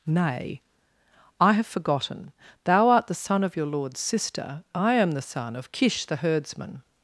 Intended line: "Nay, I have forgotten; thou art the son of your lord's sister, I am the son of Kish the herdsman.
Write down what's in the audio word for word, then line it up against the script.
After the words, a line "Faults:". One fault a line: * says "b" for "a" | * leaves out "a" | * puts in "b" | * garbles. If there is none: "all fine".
"Nay, I have forgotten; thou art the son of your lord's sister, I am the son of Kish the herdsman.
Faults:
all fine